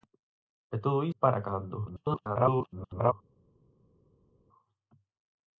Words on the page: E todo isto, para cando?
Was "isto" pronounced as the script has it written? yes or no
no